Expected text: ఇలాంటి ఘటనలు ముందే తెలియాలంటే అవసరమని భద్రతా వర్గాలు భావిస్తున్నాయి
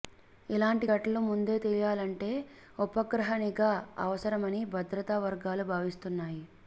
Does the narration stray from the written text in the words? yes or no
yes